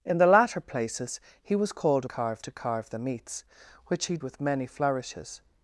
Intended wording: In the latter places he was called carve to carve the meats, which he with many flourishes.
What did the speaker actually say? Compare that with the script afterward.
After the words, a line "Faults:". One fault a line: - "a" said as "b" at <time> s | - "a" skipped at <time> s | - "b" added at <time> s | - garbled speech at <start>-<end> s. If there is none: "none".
In the latter places he was called carve to carve the meats, which he with many flourishes.
Faults:
none